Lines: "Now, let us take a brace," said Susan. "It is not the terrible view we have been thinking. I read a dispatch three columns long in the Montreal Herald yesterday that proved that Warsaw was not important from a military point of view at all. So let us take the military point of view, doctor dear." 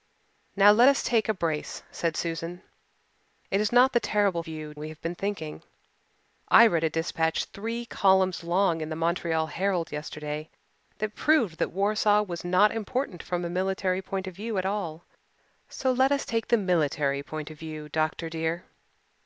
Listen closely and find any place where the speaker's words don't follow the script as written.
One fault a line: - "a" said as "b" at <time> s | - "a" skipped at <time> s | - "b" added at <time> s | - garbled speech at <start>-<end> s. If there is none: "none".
none